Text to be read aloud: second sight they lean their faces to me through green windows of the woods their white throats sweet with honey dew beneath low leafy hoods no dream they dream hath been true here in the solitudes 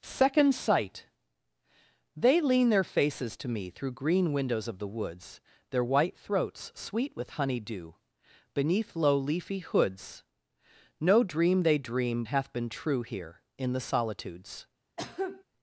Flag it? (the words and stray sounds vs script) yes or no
yes